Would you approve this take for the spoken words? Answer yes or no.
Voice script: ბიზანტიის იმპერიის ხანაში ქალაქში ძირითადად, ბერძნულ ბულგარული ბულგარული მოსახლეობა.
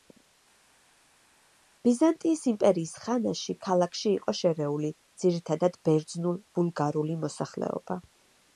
no